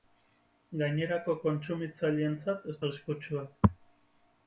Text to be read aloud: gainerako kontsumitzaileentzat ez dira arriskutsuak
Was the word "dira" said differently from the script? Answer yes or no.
yes